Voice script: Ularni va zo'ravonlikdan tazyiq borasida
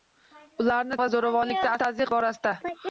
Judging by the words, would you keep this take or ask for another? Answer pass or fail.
pass